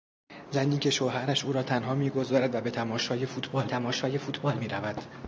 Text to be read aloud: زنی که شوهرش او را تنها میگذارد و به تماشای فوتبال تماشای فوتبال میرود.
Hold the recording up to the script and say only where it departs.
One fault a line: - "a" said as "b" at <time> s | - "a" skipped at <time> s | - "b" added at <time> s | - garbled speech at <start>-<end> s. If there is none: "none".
none